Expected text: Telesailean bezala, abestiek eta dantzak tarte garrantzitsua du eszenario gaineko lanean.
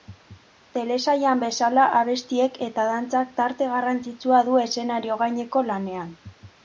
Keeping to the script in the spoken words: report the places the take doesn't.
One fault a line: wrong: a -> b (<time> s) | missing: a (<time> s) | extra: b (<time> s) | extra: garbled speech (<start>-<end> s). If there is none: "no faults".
no faults